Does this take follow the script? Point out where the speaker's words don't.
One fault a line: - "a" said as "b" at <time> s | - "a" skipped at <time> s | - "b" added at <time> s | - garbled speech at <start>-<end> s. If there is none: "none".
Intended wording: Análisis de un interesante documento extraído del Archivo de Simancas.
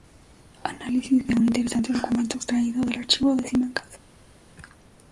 none